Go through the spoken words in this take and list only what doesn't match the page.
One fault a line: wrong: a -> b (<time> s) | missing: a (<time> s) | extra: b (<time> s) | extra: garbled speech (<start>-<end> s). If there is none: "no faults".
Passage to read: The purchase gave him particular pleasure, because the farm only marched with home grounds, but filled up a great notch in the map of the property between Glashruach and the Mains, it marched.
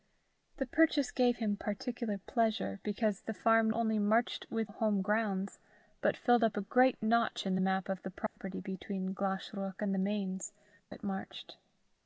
no faults